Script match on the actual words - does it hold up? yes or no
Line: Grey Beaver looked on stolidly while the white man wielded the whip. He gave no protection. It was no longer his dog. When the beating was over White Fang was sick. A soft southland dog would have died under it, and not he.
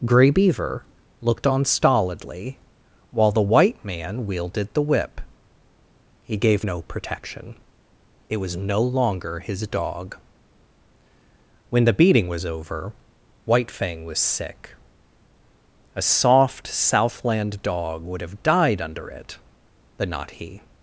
no